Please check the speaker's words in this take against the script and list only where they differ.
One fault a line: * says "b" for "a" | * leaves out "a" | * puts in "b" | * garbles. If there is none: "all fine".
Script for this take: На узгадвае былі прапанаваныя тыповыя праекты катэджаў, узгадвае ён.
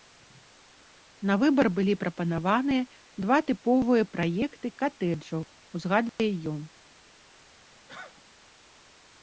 * says "выбар" for "узгадвае"
* puts in "два"